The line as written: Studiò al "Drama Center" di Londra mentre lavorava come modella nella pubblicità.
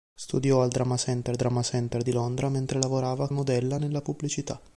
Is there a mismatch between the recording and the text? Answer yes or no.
yes